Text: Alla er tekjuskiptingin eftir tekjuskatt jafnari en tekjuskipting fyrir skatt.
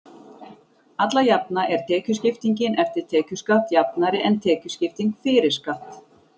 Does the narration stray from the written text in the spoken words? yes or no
yes